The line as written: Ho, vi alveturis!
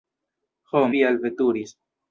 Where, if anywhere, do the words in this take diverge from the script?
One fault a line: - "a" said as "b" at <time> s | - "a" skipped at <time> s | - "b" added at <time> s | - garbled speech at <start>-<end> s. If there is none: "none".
none